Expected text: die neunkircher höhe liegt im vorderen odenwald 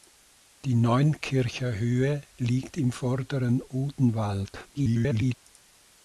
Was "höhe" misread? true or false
false